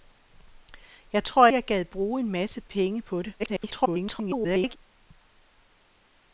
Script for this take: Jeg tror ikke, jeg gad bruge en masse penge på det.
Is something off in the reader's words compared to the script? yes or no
yes